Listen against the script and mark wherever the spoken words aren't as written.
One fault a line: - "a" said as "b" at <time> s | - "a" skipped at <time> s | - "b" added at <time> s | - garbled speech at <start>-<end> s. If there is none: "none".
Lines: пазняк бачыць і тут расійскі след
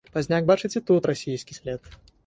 none